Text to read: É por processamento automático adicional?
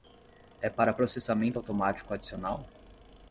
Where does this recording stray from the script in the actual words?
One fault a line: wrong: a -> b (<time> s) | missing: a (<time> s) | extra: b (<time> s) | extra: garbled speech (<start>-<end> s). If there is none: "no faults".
wrong: por -> para (0.7 s)